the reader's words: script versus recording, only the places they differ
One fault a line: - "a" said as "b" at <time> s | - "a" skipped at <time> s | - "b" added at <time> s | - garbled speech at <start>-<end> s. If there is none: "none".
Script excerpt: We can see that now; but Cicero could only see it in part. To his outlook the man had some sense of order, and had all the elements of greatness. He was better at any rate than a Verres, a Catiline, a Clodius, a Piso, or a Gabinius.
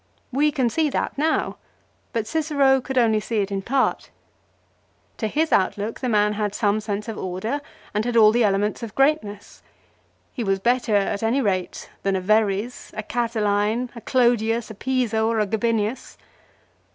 none